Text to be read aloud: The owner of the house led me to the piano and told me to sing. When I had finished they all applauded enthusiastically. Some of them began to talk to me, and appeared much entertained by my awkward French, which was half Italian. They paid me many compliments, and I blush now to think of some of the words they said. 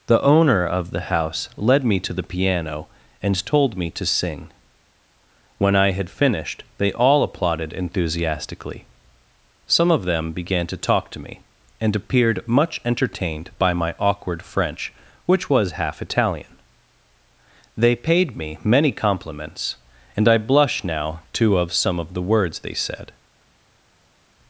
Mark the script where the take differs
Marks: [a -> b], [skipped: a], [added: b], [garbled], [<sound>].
The owner of the house led me to the piano and told me to sing. When I had finished they all applauded enthusiastically. Some of them began to talk to me, and appeared much entertained by my awkward French, which was half Italian. They paid me many compliments, and I blush now to [skipped: think] of some of the words they said.